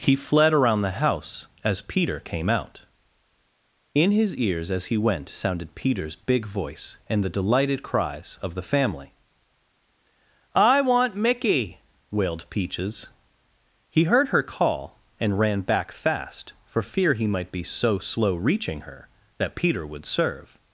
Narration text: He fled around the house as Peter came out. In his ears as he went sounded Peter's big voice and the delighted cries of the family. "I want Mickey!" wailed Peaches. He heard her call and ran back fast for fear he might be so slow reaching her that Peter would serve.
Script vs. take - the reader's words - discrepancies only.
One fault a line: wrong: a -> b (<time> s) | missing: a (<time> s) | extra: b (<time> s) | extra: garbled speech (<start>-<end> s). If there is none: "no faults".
no faults